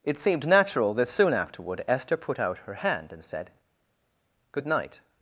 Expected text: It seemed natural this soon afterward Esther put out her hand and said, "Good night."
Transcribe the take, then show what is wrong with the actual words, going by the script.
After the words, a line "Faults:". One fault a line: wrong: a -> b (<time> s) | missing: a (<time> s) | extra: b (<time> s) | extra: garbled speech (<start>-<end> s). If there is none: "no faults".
It seemed natural that soon afterward Esther put out her hand and said, "Good night."
Faults:
wrong: this -> that (0.9 s)